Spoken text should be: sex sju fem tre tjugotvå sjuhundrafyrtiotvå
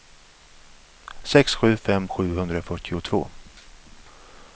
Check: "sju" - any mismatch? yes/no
no